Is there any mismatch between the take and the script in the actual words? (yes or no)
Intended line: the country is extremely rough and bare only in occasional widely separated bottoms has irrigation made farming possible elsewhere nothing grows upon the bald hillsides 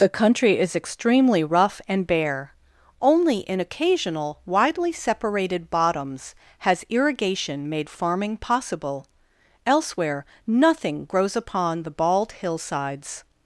no